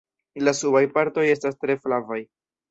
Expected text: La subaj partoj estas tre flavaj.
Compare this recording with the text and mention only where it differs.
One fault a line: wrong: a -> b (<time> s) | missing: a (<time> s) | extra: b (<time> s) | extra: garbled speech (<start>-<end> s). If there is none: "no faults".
no faults